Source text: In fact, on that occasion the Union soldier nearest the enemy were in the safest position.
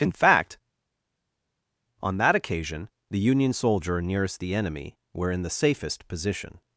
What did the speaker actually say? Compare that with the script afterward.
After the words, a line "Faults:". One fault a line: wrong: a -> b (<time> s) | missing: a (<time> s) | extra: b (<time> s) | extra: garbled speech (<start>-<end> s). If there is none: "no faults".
In fact, on that occasion the Union soldier nearest the enemy were in the safest position.
Faults:
no faults